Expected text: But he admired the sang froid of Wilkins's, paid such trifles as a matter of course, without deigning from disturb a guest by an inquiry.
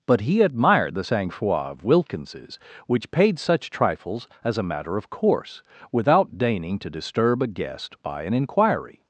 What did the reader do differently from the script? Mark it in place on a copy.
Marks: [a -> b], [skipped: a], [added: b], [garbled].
But he admired the sang froid of Wilkins's, [added: which] paid such trifles as a matter of course, without deigning [from -> to] disturb a guest by an inquiry.